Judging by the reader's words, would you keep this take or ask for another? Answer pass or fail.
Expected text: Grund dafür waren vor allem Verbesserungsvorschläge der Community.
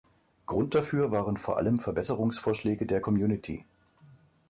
pass